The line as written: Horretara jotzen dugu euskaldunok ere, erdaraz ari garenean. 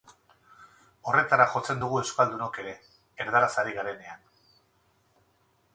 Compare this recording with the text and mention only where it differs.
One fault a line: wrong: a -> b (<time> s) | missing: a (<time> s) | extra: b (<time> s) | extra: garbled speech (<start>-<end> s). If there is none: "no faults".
no faults